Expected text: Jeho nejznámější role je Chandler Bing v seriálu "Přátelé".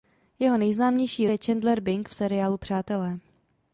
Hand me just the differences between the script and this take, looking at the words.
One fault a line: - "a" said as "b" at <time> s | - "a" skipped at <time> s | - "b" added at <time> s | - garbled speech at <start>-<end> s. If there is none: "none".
- "role" skipped at 1.3 s